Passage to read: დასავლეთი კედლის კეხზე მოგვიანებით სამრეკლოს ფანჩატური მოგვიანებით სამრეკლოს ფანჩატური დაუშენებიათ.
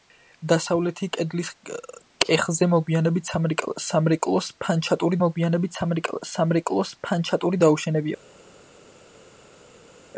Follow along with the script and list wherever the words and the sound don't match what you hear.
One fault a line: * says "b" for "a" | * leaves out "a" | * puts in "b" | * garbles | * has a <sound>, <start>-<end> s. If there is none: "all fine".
all fine